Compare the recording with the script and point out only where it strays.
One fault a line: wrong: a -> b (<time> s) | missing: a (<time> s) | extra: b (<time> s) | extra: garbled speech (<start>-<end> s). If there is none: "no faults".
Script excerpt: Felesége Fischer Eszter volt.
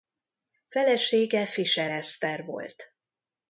no faults